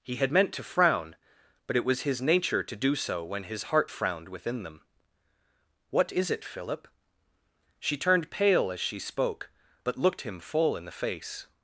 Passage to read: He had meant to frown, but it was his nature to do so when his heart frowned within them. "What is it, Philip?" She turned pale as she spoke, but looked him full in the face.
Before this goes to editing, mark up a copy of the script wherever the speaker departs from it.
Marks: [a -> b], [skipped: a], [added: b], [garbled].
He had meant to frown, but it was his nature to do so when his heart frowned within them. "What is it, Philip?" She turned pale as she spoke, but looked him full in the face.